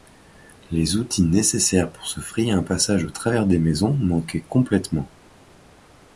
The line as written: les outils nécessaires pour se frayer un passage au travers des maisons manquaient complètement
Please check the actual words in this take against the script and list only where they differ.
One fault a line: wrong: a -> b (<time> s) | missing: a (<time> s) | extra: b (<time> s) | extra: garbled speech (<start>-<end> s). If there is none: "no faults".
no faults